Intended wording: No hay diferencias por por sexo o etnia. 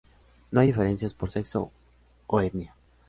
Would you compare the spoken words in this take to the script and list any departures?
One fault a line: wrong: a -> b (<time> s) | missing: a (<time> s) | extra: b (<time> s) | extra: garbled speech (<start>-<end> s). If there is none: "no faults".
missing: por (1.3 s)